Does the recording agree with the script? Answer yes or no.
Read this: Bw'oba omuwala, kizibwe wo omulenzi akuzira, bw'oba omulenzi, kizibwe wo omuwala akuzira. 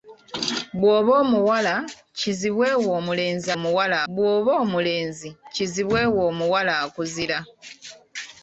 no